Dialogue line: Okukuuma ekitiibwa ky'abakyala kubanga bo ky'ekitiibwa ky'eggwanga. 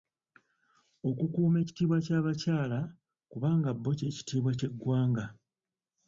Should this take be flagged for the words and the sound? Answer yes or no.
no